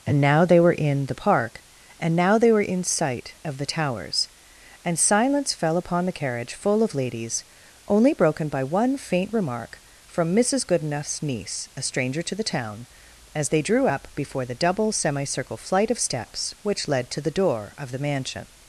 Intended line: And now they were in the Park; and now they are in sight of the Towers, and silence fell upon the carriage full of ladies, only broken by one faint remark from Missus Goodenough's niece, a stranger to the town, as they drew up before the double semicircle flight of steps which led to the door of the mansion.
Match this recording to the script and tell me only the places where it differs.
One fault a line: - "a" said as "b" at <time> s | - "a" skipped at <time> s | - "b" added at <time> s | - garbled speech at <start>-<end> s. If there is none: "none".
- "are" said as "were" at 2.5 s